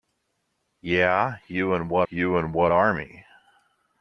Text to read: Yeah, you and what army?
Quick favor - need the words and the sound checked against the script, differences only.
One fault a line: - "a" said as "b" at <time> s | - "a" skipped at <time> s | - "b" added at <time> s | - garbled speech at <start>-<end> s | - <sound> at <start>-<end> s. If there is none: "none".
- "you and what" added at 2.1 s